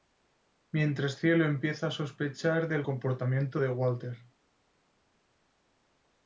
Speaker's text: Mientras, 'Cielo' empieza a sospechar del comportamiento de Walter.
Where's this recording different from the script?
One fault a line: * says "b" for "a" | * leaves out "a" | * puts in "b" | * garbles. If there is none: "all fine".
all fine